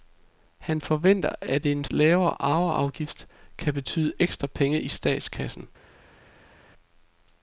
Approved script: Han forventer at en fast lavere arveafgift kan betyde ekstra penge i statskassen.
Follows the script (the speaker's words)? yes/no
no